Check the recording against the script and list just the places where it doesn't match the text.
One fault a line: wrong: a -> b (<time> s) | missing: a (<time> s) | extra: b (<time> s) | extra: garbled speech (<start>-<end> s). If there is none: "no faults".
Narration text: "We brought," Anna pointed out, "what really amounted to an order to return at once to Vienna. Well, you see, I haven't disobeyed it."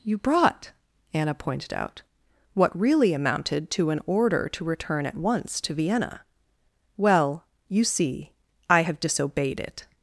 wrong: We -> You (0.0 s)
wrong: haven't -> have (8.8 s)